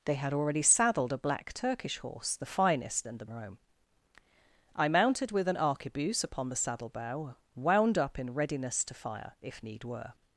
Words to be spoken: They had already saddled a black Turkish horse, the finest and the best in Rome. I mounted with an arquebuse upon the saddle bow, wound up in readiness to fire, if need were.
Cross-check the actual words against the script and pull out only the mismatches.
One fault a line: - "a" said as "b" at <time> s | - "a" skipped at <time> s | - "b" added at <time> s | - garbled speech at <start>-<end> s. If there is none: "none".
- "best in" skipped at 3.2 s